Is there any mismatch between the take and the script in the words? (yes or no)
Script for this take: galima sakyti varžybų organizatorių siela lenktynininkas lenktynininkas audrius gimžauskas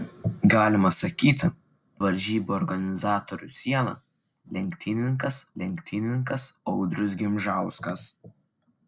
no